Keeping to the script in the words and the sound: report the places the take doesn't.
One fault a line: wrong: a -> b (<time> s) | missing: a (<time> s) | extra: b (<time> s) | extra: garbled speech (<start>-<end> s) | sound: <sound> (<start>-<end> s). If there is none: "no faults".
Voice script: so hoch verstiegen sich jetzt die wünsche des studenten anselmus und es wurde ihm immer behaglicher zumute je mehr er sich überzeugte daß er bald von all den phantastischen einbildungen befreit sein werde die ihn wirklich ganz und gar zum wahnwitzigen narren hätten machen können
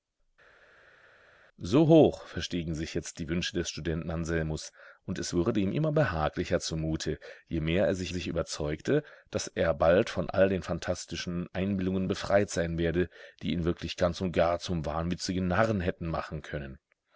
extra: sich (8.1 s)